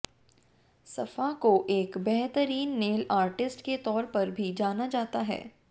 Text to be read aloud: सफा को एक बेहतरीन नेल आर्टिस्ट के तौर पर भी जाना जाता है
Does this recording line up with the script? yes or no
yes